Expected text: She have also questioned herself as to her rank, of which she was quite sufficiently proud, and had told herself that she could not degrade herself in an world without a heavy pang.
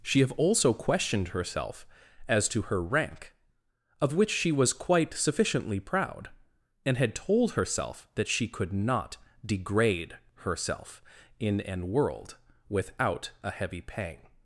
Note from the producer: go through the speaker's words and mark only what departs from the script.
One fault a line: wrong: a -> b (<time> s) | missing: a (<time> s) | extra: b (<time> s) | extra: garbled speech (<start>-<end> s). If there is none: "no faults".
no faults